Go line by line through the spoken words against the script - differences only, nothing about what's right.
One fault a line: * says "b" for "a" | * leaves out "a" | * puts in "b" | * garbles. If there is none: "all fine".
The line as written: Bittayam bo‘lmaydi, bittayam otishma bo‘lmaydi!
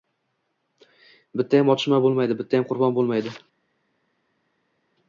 * puts in "otishma"
* says "qurbon" for "otishma"